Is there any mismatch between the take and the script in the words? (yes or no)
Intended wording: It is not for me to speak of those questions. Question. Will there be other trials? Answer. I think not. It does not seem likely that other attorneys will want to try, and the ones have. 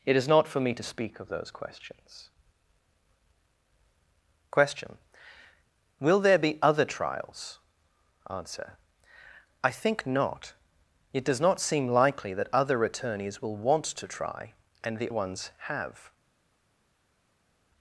no